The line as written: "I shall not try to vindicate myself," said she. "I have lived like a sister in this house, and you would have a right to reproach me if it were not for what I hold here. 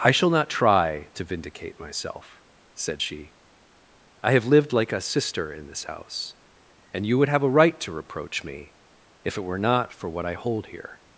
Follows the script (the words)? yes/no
yes